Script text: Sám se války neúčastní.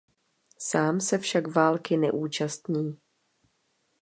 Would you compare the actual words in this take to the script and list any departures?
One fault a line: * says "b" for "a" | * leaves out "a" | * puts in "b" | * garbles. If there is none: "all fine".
* puts in "však"